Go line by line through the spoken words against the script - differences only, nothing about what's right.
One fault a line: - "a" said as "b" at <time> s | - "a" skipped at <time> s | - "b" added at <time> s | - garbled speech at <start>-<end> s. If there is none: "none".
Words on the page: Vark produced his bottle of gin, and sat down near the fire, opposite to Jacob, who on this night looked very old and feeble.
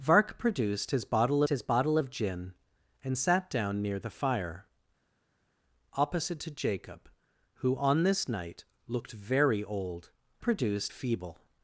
- "his bottle" added at 1.5 s
- "and" said as "produced" at 10.4 s